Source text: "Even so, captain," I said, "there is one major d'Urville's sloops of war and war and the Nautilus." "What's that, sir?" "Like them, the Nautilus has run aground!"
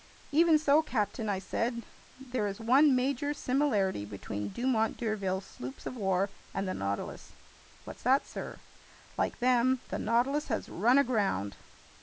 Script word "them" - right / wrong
right